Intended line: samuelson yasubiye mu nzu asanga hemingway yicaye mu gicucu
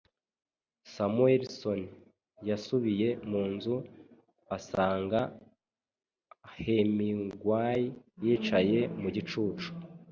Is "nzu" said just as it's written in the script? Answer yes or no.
yes